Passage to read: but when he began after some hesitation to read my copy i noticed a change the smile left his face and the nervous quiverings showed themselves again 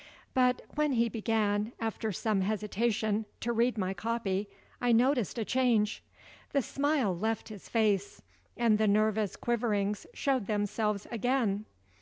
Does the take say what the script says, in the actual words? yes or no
yes